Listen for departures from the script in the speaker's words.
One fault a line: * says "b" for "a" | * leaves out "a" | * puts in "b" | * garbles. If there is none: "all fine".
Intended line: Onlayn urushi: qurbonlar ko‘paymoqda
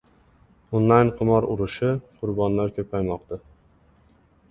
* puts in "qimor"